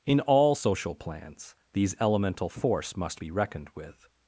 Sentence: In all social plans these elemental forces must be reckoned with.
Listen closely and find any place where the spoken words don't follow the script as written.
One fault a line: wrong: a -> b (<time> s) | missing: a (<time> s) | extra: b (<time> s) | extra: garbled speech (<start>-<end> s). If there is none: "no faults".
wrong: forces -> force (2.5 s)